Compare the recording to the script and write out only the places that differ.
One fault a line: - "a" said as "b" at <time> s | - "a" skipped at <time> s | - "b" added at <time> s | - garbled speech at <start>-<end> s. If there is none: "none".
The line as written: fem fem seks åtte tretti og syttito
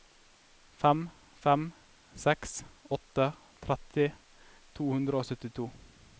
- "to hundre" added at 4.8 s